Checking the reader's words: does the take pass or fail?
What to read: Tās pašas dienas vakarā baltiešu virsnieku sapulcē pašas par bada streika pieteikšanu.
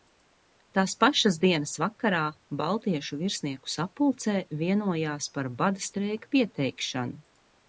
fail